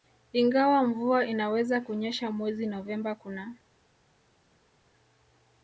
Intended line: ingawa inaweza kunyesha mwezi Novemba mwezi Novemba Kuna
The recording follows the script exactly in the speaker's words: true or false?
false